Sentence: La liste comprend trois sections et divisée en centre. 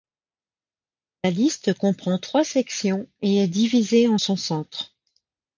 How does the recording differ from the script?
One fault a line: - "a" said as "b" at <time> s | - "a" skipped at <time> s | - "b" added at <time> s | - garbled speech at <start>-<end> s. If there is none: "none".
- "est" added at 3.4 s
- "son" added at 4.1 s